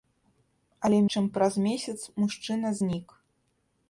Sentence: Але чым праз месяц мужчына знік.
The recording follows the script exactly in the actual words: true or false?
true